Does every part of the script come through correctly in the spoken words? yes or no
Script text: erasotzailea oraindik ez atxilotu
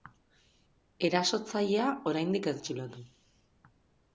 yes